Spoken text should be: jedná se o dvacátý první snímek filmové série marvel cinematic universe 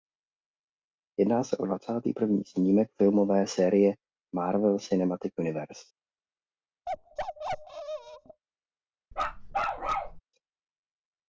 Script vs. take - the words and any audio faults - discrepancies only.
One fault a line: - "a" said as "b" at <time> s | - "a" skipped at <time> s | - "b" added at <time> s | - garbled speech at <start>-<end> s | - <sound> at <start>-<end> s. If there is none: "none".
- bark at 6.9-8.4 s
- bark at 9.1-10.2 s